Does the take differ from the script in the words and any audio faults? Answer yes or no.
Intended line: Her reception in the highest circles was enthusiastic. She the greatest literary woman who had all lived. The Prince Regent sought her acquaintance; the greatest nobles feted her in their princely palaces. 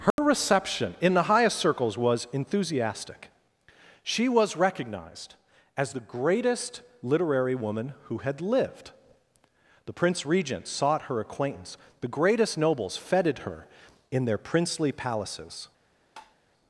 yes